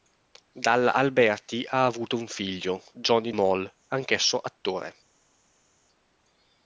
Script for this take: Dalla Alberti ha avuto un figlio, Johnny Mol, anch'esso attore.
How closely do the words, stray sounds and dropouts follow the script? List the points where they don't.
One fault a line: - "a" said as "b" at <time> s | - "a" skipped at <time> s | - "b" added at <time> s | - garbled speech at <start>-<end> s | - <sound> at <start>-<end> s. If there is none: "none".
none